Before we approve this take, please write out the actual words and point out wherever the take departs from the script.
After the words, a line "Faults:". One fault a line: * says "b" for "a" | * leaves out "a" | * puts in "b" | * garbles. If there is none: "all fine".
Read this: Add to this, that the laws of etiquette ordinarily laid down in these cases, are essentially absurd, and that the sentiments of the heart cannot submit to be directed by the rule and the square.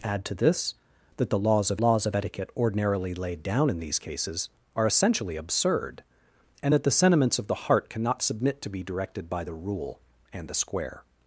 Add to this, that the laws of laws of etiquette ordinarily laid down in these cases, are essentially absurd, and that the sentiments of the heart cannot submit to be directed by the rule and the square.
Faults:
* puts in "laws of"